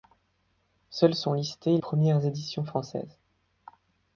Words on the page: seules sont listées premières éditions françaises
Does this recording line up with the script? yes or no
yes